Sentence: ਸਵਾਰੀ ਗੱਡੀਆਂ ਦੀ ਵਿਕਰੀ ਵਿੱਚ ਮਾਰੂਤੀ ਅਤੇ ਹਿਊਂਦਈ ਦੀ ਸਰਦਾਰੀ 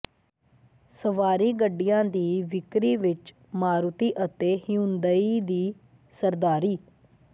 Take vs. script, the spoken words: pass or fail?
pass